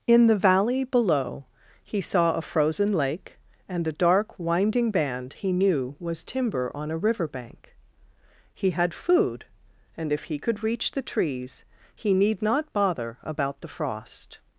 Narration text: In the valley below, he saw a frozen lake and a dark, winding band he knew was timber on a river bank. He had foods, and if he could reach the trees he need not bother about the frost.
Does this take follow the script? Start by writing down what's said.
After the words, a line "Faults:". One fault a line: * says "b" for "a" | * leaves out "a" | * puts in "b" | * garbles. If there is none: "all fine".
In the valley below, he saw a frozen lake and a dark, winding band he knew was timber on a river bank. He had food, and if he could reach the trees he need not bother about the frost.
Faults:
* says "food" for "foods"